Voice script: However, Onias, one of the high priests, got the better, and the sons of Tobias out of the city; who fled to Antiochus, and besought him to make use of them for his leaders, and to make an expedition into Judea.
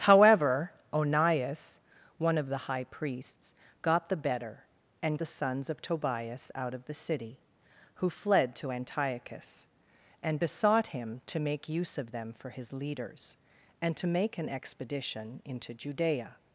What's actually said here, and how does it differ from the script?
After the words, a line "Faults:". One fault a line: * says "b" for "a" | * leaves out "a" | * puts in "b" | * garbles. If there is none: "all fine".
However, Onias, one of the high priests, got the better, and the sons of Tobias out of the city; who fled to Antiochus, and besought him to make use of them for his leaders, and to make an expedition into Judea.
Faults:
all fine